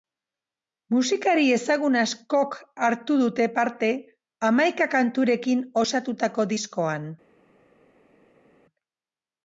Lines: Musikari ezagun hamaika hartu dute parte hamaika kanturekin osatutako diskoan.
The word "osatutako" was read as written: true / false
true